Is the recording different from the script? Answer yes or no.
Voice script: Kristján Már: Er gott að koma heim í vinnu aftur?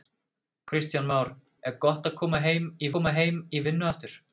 yes